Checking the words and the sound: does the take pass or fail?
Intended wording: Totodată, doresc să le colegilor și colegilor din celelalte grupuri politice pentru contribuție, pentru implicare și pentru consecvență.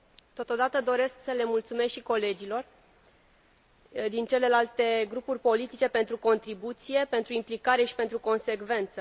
fail